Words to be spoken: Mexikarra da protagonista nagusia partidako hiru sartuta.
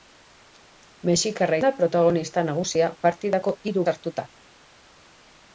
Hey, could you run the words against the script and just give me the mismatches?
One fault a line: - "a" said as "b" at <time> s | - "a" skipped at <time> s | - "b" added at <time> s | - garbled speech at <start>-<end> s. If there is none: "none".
none